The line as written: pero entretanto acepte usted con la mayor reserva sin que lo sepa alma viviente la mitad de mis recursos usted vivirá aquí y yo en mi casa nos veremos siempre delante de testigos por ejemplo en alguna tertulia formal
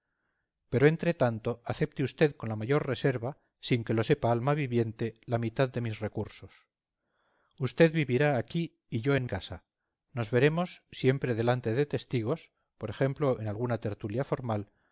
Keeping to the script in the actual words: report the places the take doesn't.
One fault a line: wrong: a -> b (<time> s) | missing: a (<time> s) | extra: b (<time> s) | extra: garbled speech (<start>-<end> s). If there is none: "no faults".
missing: mi (9.3 s)